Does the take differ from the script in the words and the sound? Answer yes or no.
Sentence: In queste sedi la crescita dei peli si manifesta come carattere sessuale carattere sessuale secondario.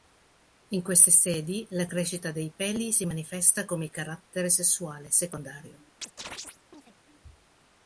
yes